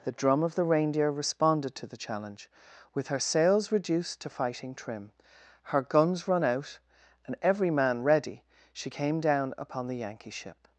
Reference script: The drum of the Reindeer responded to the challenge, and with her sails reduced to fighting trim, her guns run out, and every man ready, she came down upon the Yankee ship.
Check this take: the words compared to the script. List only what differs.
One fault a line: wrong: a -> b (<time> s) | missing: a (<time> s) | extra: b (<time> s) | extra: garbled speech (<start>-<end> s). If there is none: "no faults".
missing: and (2.5 s)